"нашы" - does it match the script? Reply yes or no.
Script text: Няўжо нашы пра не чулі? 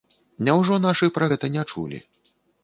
yes